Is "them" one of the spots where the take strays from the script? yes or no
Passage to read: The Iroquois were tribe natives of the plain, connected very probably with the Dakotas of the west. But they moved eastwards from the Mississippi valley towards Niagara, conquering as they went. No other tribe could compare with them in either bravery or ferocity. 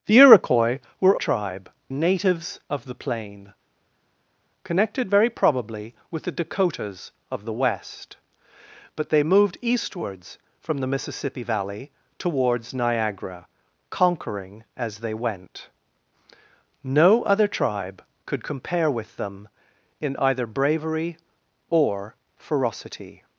no